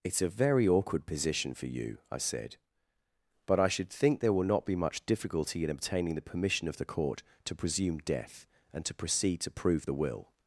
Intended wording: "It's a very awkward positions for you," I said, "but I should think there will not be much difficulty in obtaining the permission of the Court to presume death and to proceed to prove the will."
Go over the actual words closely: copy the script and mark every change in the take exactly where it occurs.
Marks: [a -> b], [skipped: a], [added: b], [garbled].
"It's a very awkward [positions -> position] for you," I said, "but I should think there will not be much difficulty in obtaining the permission of the Court to presume death and to proceed to prove the will."